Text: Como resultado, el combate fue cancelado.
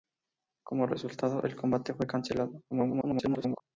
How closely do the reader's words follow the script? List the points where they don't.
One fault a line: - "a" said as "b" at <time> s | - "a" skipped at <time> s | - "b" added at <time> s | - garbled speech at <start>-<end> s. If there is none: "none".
- garbled speech at 2.7-3.6 s